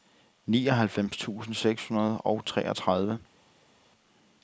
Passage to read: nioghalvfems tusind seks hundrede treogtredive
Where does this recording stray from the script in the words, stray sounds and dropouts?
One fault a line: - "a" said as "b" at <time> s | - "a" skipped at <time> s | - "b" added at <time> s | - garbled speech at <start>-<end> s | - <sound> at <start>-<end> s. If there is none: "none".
- "og" added at 2.2 s